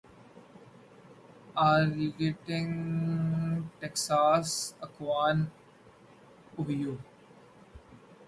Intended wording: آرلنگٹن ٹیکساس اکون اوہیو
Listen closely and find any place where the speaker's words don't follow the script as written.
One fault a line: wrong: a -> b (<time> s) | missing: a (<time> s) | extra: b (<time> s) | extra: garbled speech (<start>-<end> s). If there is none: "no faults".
no faults